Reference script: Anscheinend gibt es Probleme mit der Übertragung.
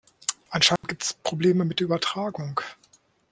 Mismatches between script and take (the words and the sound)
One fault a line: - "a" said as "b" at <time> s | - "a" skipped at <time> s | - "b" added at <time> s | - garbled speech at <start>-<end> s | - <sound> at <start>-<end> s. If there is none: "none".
- dropout at 0.8-0.8 s